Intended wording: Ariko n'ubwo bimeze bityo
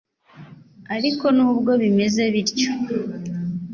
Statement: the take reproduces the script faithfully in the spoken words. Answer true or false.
true